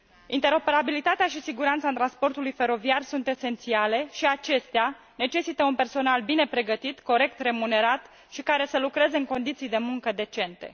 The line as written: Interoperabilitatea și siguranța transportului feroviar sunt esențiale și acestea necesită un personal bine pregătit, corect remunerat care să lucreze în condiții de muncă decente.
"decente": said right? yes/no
yes